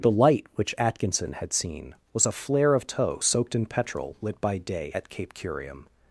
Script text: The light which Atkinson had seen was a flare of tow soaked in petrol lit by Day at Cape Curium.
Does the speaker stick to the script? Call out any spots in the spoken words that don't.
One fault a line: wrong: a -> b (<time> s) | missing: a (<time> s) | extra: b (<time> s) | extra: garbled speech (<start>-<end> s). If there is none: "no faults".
no faults